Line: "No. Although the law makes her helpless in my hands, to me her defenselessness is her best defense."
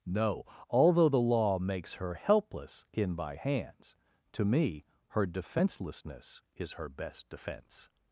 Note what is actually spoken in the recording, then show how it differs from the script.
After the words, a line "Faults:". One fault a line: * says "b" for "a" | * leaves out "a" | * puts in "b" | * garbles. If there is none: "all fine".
"No. Although the law makes her helpless in by hands, to me her defenselessness is her best defense."
Faults:
* says "by" for "my"